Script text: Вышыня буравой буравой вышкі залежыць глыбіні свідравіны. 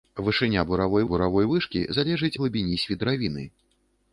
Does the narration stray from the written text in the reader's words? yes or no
no